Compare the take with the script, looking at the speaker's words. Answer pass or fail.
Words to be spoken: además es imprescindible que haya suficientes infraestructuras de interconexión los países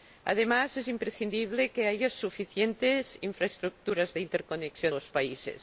pass